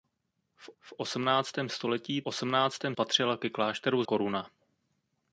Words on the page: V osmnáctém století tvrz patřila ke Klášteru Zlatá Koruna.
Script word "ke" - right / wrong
right